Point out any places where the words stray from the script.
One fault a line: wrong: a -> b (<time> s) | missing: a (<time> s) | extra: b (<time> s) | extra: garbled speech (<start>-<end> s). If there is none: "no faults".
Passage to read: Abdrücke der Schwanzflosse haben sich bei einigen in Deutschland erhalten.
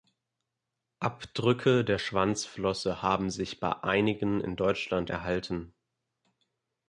no faults